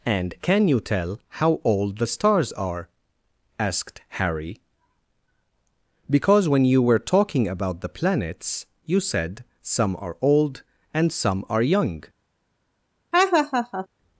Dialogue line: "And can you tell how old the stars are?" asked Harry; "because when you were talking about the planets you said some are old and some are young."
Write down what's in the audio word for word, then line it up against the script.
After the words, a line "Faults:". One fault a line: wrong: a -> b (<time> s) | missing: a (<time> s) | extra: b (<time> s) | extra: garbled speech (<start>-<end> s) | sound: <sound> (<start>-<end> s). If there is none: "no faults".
"And can you tell how old the stars are?" asked Harry; "because when you were talking about the planets you said some are old and some are young."
Faults:
sound: laugh (13.1-13.9 s)